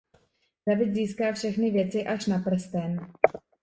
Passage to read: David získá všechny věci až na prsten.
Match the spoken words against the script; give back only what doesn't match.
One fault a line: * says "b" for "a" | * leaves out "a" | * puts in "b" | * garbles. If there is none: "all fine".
all fine